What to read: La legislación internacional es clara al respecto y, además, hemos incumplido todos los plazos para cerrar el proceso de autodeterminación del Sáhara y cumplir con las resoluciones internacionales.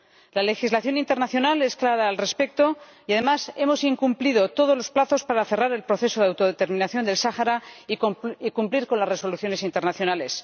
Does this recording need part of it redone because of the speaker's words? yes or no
no